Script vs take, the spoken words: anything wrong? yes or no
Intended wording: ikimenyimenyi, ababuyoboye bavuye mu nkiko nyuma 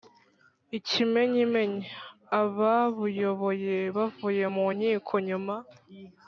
no